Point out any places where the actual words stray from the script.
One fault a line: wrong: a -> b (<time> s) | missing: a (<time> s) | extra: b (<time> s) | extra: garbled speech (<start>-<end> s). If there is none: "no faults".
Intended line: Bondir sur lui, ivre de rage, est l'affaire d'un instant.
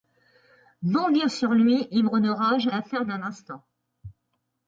missing: est (2.7 s)